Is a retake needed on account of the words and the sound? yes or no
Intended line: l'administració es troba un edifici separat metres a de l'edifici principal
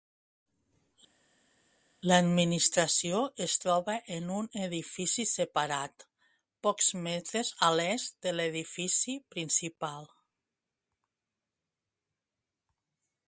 yes